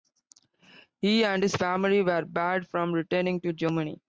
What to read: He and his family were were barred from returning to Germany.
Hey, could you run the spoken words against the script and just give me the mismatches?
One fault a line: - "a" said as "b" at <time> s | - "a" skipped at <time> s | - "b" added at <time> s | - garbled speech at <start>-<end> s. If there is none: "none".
- "were" skipped at 2.2 s